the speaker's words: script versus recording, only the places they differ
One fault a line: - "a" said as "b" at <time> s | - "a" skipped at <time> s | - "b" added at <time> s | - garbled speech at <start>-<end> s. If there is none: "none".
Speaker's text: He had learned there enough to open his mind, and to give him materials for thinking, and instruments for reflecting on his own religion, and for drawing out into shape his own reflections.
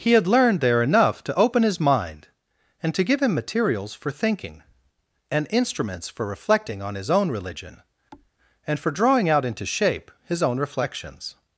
none